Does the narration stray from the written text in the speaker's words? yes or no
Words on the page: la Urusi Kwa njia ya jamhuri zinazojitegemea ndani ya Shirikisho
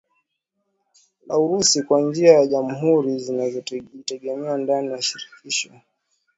no